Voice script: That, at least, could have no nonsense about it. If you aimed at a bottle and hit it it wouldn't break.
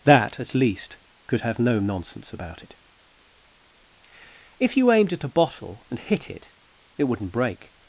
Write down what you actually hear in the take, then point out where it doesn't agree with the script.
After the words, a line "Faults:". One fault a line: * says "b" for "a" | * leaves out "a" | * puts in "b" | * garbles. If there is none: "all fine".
That, at least, could have no nonsense about it. If you aimed at a bottle and hit it it wouldn't break.
Faults:
all fine